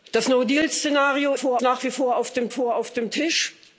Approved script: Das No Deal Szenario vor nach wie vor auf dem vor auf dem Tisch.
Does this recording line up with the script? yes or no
yes